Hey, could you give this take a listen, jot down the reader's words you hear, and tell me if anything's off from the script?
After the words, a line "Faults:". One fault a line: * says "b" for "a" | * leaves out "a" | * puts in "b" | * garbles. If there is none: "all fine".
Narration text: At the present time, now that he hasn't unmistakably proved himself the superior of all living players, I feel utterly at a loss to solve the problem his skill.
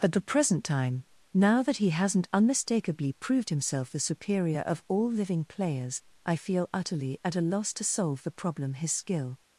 At the present time, now that he hasn't unmistakably proved himself the superior of all living players, I feel utterly at a loss to solve the problem his skill.
Faults:
all fine